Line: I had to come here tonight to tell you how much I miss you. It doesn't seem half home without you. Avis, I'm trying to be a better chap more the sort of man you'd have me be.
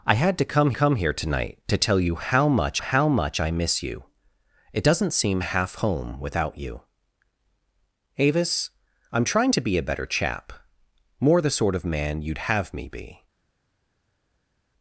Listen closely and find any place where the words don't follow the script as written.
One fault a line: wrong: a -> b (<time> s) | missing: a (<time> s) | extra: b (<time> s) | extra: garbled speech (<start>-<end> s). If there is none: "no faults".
extra: come (0.7 s)
extra: how much (2.8 s)